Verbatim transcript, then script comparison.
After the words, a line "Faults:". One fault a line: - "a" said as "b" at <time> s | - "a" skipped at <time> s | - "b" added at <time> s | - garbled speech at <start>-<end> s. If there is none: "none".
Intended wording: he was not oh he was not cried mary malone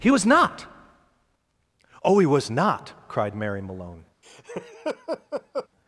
he was not oh he was not cried mary malone
Faults:
none